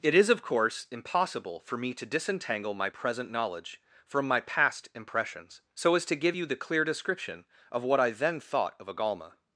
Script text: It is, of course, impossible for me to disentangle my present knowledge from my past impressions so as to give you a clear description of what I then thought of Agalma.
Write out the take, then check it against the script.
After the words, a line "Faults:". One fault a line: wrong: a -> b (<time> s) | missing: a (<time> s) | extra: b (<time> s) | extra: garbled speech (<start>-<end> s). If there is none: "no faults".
It is, of course, impossible for me to disentangle my present knowledge from my past impressions so as to give you the clear description of what I then thought of Agalma.
Faults:
wrong: a -> the (6.4 s)